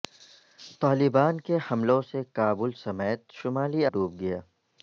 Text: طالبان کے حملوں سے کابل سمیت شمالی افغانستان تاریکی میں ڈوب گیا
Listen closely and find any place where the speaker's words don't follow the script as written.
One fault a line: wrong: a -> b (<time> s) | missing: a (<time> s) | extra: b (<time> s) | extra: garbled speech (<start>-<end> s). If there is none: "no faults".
missing: افغانستان تاریکی میں (3.9 s)